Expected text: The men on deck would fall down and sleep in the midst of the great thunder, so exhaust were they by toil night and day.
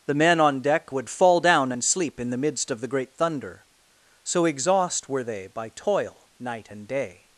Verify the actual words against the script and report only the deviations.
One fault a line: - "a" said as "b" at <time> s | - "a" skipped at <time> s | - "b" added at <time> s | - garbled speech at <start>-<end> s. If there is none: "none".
none